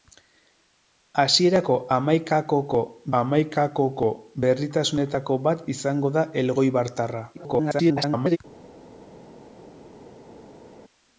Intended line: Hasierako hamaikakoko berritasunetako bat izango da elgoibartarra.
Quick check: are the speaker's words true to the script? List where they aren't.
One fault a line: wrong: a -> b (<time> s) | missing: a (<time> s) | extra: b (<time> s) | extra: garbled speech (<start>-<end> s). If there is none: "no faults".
extra: hamaikakoko (3.2 s)
extra: garbled speech (7.3-8.4 s)